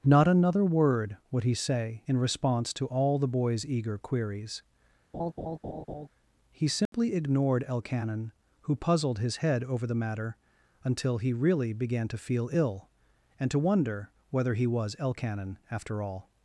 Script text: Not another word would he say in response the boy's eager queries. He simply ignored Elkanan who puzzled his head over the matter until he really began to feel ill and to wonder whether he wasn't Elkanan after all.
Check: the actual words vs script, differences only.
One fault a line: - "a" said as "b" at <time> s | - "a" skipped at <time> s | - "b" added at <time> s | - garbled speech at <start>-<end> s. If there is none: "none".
- "to all" added at 2.7 s
- "wasn't" said as "was" at 14.7 s